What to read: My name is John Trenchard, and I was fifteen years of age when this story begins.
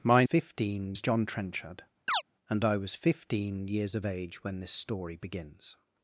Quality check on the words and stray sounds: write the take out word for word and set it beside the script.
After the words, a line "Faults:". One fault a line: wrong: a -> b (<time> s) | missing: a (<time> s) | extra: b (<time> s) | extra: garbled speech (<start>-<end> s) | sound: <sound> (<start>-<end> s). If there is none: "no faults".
My fifteen is John Trenchard, and I was fifteen years of age when this story begins.
Faults:
wrong: name -> fifteen (0.2 s)
sound: chirp (2.1-2.2 s)